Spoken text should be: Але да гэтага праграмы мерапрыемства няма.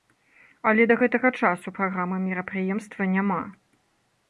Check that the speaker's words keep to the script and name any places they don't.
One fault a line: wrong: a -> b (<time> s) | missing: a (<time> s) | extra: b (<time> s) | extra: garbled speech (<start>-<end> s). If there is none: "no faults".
extra: часу (1.4 s)